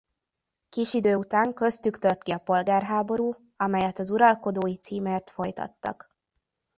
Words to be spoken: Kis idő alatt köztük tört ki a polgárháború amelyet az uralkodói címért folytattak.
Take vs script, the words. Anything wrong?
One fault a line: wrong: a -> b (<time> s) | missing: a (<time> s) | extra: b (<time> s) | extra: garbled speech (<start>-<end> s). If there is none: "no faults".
wrong: alatt -> után (1.1 s)